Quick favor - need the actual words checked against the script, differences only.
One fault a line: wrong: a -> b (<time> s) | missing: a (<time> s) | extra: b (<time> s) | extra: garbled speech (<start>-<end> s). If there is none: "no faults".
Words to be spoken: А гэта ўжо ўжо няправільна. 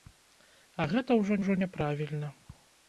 no faults